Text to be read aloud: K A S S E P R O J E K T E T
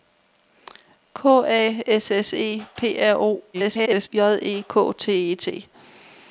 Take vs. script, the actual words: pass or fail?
fail